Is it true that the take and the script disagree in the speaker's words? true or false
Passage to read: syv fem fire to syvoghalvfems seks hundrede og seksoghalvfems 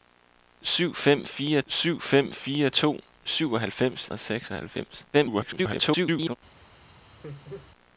true